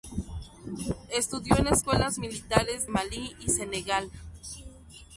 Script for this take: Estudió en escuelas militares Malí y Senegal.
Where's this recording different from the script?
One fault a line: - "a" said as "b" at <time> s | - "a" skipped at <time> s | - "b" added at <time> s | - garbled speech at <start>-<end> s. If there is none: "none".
none